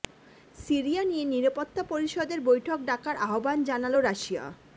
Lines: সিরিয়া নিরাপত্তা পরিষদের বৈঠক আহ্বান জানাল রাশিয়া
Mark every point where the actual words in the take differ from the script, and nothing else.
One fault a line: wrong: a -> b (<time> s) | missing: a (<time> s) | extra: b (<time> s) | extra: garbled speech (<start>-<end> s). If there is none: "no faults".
extra: নিয়ে (1.1 s)
extra: ডাকার (2.9 s)